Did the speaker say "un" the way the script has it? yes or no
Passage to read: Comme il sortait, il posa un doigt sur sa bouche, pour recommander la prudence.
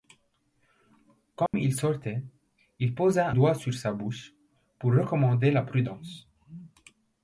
no